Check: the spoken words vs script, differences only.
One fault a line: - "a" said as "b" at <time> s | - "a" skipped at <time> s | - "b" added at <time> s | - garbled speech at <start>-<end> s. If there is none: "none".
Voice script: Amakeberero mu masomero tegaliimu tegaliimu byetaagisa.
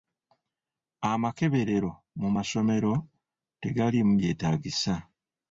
- "tegaliimu" skipped at 4.1 s